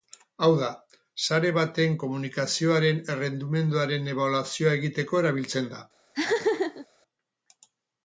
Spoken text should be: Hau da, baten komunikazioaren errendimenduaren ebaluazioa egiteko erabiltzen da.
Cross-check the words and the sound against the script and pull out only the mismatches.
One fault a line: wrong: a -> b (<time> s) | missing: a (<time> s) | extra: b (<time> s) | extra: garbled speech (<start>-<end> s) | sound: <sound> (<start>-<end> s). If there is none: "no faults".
extra: sare (1.2 s)
sound: laugh (6.1-6.9 s)